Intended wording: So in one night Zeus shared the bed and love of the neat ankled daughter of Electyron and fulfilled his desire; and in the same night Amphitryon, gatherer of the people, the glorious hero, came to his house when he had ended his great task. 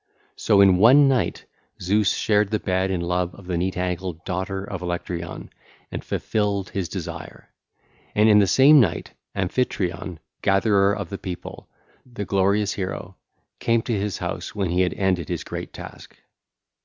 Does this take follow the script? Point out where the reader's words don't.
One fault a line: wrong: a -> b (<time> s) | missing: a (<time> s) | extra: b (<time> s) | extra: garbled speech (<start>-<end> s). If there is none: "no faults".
no faults